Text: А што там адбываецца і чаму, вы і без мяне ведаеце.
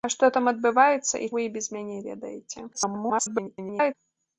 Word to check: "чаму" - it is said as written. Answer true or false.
false